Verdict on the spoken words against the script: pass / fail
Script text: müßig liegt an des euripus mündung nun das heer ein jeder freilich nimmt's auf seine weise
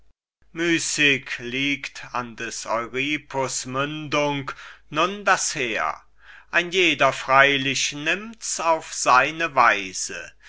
pass